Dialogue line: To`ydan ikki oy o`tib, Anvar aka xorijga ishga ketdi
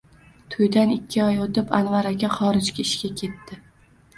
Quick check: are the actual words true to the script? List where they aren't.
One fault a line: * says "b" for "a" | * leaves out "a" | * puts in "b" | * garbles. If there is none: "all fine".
all fine